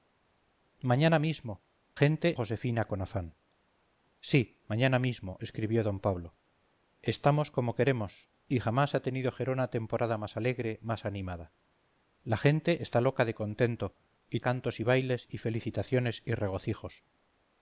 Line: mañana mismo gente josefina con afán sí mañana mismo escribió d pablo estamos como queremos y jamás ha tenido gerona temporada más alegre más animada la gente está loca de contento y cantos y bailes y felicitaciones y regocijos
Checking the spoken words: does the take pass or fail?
pass